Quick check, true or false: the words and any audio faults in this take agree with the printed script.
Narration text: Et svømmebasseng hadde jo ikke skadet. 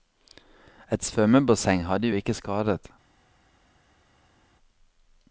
true